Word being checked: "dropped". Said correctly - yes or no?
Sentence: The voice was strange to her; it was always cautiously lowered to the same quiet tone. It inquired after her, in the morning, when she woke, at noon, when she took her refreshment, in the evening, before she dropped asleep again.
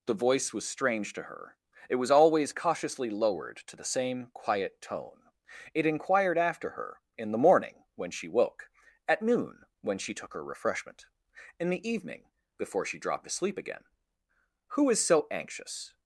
yes